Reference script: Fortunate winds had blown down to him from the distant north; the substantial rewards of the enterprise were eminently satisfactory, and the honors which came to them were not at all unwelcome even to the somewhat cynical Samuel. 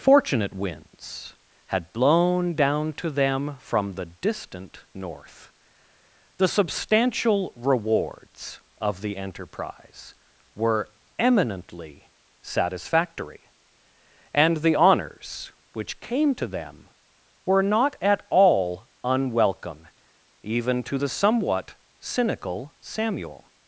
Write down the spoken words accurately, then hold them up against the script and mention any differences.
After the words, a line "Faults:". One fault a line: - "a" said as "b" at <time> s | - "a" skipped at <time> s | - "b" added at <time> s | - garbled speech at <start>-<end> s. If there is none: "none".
Fortunate winds had blown down to them from the distant north; the substantial rewards of the enterprise were eminently satisfactory, and the honors which came to them were not at all unwelcome even to the somewhat cynical Samuel.
Faults:
- "him" said as "them" at 3.1 s